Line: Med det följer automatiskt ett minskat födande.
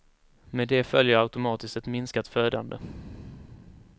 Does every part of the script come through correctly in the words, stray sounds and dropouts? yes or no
yes